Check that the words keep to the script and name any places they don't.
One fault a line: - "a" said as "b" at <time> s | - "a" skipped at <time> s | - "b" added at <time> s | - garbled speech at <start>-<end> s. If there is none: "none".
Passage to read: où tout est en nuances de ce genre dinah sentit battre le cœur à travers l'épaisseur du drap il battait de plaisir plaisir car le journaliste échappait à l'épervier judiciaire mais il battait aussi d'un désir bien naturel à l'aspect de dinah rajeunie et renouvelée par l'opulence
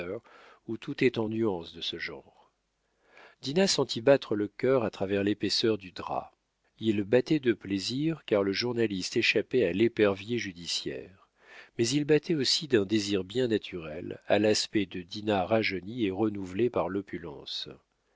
- "plaisir" skipped at 8.2 s